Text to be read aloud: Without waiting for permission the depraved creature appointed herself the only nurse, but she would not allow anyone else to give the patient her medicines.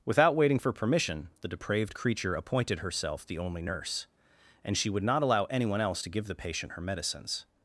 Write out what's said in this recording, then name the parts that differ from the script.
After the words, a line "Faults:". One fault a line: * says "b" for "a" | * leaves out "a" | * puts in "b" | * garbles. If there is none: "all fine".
Without waiting for permission the depraved creature appointed herself the only nurse, and she would not allow anyone else to give the patient her medicines.
Faults:
* says "and" for "but"